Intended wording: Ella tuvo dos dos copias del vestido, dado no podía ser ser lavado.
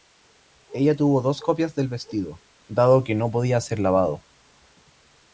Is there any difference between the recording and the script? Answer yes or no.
yes